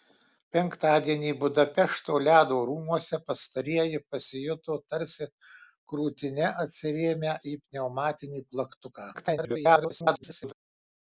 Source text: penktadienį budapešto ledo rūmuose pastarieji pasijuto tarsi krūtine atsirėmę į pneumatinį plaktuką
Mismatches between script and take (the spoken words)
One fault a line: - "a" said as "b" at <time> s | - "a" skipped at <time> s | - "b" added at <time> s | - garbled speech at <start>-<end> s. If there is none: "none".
- garbled speech at 9.1-10.5 s